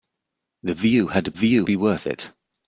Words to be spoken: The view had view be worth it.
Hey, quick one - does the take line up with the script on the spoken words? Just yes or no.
yes